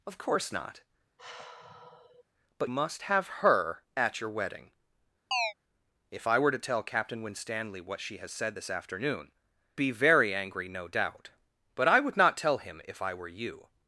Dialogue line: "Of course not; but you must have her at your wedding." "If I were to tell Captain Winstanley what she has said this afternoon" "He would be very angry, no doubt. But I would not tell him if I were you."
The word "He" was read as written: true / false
false